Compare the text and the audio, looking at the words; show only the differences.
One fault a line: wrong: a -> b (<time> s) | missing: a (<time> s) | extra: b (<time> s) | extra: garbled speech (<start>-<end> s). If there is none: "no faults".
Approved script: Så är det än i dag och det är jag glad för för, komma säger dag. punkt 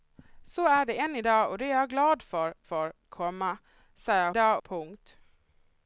no faults